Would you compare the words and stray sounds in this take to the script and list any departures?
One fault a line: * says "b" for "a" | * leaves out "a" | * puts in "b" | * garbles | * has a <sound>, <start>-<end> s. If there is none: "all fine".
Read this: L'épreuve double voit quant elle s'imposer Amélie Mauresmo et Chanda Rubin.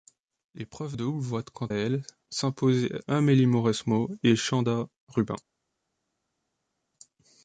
all fine